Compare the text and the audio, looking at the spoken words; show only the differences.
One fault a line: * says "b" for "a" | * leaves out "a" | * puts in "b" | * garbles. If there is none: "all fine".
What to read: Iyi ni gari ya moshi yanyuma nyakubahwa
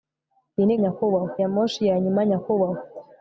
* says "nyakubahwa" for "gari"